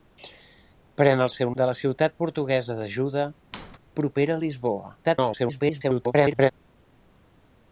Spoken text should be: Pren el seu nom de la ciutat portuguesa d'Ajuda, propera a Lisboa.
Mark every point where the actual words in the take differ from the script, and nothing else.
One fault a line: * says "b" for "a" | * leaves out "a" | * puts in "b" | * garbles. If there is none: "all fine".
* leaves out "nom"
* garbles